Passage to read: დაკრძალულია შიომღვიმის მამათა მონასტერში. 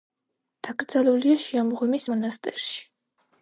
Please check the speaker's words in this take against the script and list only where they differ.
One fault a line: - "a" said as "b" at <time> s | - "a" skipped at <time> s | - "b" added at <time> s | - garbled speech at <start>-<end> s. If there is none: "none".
- "მამათა" skipped at 2.0 s